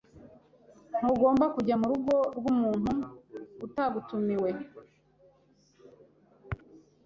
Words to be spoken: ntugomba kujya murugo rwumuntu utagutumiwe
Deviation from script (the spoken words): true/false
false